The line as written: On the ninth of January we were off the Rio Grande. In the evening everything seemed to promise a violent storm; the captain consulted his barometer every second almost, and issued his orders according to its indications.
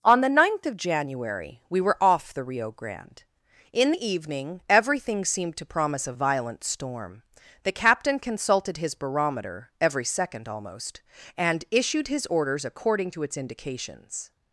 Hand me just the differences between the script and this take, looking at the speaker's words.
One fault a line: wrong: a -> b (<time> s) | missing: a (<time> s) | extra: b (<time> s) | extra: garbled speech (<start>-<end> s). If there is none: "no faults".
no faults